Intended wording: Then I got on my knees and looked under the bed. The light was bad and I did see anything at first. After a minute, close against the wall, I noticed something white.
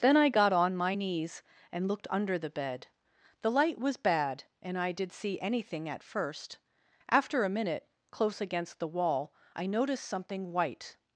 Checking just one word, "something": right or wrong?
right